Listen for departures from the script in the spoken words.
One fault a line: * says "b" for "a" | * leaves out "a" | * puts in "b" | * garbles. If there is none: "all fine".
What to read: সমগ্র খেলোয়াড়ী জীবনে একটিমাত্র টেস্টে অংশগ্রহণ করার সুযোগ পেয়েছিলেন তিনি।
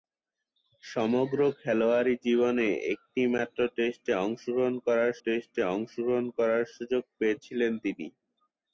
* puts in "টেস্টে অংশগ্রহণ করার"